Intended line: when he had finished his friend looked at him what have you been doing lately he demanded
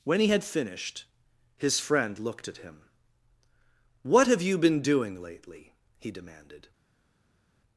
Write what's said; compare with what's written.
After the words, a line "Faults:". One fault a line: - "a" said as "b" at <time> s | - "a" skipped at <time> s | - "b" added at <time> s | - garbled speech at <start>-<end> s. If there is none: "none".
when he had finished his friend looked at him what have you been doing lately he demanded
Faults:
none